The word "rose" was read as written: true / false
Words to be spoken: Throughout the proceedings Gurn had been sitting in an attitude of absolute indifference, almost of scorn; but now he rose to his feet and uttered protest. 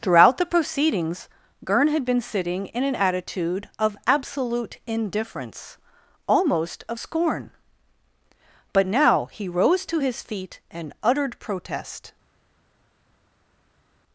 true